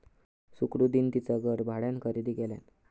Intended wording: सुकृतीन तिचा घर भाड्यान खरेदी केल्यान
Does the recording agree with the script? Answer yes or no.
yes